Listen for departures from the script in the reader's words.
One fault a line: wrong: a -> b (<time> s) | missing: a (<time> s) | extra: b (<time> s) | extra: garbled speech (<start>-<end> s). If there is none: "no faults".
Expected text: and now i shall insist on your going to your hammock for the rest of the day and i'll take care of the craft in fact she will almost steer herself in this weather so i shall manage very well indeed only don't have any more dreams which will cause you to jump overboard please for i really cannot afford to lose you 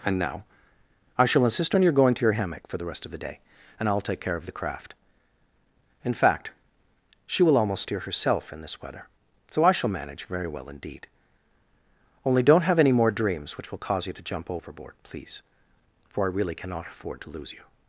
no faults